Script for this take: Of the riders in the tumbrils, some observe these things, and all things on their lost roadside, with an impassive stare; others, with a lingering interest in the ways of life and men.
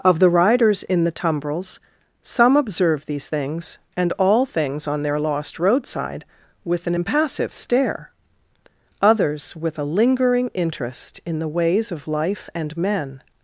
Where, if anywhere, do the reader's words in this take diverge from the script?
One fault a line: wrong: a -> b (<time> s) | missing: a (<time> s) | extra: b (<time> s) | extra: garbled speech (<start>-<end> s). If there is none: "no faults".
no faults